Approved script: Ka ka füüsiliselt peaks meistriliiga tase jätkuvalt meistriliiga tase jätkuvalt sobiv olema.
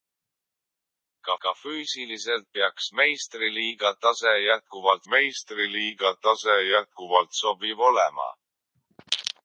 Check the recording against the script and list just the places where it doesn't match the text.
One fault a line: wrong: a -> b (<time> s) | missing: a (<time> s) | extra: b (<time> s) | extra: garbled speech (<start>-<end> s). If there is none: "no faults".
no faults